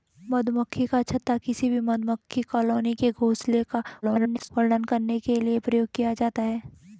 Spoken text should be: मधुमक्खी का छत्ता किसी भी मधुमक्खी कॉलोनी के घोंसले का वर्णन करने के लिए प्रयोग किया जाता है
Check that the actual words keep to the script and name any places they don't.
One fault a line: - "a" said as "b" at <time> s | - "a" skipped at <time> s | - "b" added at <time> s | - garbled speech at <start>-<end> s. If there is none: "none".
- garbled speech at 4.0-4.5 s